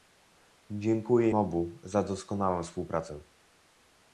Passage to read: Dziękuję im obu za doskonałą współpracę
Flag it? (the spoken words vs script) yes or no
yes